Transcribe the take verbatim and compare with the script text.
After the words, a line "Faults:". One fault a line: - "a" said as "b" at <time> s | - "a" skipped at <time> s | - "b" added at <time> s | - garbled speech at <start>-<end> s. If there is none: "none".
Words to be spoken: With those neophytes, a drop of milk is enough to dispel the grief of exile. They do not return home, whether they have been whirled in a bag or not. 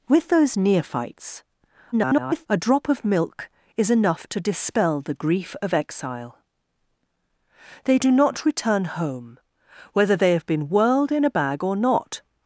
With those neophytes, [garbled] a drop of milk is enough to dispel the grief of exile. They do not return home, whether they have been whirled in a bag or not.
Faults:
- garbled speech at 1.9-2.5 s